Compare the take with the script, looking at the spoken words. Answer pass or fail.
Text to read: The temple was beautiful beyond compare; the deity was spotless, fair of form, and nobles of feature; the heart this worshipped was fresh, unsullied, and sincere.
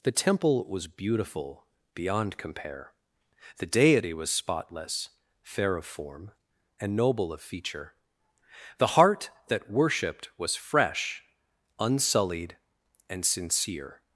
fail